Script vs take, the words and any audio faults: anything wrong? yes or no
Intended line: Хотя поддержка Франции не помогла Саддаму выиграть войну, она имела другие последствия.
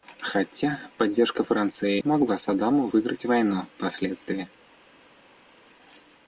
yes